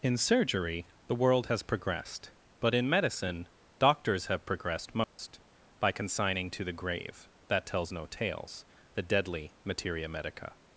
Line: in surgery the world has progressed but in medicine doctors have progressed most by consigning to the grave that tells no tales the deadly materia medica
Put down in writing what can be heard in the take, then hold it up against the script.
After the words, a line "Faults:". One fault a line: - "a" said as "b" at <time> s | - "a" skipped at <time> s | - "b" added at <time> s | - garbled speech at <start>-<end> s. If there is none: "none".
in surgery the world has progressed but in medicine doctors have progressed most by consigning to the grave that tells no tales the deadly materia medica
Faults:
none